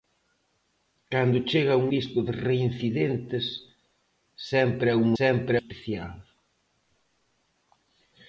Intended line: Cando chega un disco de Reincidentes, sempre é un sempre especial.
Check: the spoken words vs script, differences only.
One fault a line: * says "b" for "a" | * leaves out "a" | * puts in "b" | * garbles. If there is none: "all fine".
all fine